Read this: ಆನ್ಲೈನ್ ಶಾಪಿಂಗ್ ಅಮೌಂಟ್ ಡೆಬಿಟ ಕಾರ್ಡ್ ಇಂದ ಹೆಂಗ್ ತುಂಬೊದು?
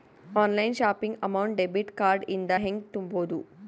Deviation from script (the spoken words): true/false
false